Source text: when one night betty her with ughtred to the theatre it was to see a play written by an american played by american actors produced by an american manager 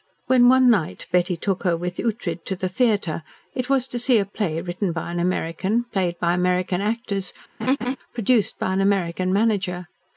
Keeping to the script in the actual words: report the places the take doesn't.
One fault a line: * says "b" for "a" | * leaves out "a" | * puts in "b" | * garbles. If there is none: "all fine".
* puts in "took"